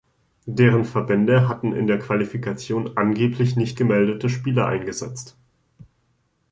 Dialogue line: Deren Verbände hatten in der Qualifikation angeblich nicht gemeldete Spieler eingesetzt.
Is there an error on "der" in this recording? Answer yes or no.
no